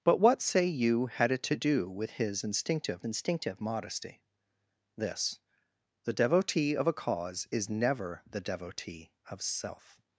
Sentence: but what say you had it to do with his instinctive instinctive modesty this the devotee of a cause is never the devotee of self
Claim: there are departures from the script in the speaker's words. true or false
false